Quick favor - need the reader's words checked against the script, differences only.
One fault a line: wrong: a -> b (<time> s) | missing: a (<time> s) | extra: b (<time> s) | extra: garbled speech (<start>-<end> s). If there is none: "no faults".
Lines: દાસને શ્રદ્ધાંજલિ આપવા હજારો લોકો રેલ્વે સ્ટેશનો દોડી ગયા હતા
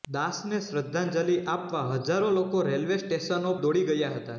no faults